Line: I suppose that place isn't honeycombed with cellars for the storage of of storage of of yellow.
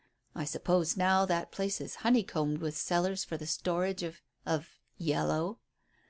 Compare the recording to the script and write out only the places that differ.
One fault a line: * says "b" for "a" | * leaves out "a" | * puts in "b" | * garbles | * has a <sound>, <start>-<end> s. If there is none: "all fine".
* puts in "now"
* says "is" for "isn't"
* leaves out "storage of of"